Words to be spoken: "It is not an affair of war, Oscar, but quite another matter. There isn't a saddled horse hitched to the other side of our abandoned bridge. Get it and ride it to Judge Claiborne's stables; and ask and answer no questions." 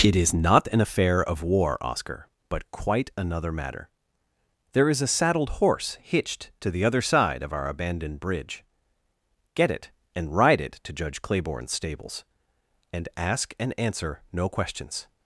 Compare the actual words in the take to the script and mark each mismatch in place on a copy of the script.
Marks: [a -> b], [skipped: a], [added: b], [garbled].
"It is not an affair of war, Oscar, but quite another matter. There [isn't -> is] a saddled horse hitched to the other side of our abandoned bridge. Get it and ride it to Judge Claiborne's stables; and ask and answer no questions."